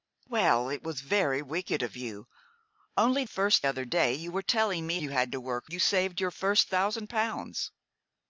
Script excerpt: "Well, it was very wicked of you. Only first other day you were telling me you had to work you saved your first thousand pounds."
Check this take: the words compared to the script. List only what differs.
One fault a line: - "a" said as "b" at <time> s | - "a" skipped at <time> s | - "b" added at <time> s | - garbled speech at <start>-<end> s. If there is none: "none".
none